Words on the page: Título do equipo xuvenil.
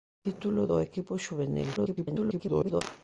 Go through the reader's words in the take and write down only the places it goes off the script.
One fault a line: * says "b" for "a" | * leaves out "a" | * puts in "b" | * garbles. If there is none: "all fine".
* garbles